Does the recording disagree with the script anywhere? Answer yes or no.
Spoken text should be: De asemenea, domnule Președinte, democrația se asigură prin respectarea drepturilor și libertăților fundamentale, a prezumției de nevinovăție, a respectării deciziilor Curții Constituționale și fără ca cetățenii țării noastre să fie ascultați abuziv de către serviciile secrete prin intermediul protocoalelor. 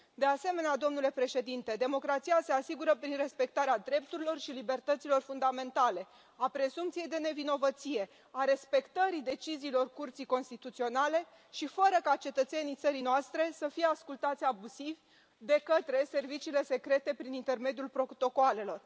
no